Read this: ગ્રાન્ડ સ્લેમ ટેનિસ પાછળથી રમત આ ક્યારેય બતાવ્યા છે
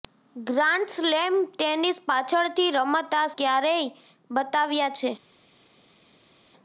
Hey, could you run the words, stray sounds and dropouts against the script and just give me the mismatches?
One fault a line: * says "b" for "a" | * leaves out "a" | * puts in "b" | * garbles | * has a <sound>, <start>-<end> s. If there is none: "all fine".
all fine